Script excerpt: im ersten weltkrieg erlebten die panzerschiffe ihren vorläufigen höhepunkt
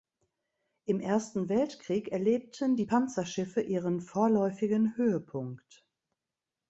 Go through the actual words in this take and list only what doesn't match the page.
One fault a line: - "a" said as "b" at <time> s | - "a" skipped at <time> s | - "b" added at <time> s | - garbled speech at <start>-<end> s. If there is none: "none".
none